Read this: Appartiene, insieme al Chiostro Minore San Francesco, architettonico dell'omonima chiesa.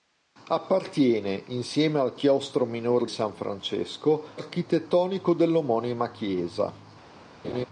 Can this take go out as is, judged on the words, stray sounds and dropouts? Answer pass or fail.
fail